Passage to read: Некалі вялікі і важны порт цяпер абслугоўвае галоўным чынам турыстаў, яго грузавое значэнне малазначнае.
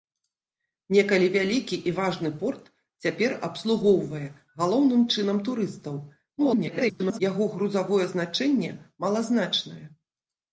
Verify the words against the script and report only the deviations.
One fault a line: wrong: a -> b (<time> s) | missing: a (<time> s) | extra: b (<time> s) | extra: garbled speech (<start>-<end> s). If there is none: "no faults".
extra: garbled speech (6.4-7.2 s)